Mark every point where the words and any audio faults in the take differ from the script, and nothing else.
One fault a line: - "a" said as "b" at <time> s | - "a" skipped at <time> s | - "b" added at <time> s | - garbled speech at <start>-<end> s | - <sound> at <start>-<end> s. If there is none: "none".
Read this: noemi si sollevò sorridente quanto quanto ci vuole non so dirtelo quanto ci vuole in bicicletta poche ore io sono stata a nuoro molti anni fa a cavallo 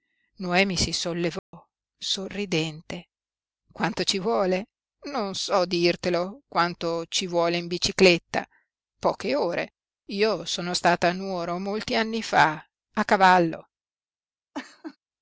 - dropout at 1.4-1.5 s
- "quanto" skipped at 4.0 s
- laugh at 14.5-15.0 s